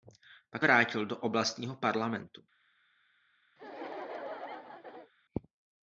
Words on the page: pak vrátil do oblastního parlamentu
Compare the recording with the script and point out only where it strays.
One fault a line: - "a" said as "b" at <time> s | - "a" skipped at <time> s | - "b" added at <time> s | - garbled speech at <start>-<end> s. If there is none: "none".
none